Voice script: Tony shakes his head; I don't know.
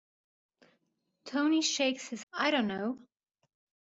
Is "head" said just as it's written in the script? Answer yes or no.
no